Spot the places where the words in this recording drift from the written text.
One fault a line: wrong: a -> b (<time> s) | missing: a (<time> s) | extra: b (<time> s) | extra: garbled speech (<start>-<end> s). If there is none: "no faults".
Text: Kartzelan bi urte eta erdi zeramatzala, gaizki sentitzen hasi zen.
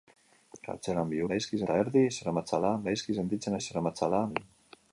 wrong: urte -> gaizki (1.3 s)
wrong: hasi -> zeramatzala (3.7 s)